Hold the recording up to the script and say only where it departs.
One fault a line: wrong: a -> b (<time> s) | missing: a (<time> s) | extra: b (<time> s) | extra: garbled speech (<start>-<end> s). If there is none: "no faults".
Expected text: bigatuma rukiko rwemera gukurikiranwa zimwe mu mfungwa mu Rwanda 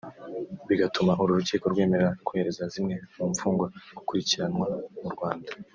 extra: uru (1.2 s)
wrong: gukurikiranwa -> kohereza (2.3 s)
extra: gukurikiranwa (4.0 s)